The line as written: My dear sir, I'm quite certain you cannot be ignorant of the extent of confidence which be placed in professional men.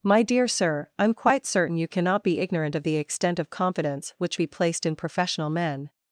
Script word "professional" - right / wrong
right